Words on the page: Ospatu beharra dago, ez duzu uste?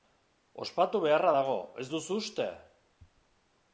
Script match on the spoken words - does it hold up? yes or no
yes